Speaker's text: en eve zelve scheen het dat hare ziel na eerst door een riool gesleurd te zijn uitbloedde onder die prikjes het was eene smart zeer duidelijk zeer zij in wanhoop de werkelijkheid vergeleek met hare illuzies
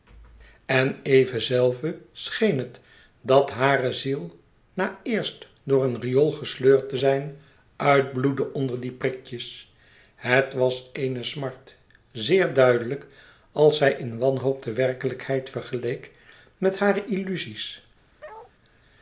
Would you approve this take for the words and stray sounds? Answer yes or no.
no